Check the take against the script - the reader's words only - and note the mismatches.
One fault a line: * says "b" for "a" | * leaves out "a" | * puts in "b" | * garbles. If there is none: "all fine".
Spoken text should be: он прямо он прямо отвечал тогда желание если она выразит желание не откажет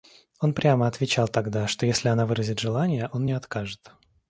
* leaves out "он прямо"
* says "что" for "желание"
* puts in "он"